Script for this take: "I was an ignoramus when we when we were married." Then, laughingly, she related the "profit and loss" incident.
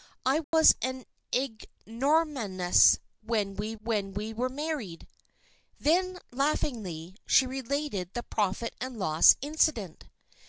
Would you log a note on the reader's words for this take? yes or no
no